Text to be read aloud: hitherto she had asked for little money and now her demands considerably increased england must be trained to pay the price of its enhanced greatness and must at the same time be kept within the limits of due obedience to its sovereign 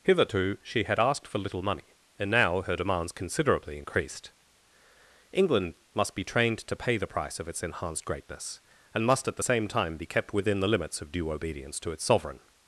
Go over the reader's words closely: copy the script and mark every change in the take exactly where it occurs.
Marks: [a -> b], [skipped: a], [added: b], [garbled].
hitherto she had asked for little money and now her demands considerably increased england must be trained to pay the price of its enhanced greatness and must at the same time be kept within the limits of due obedience to its sovereign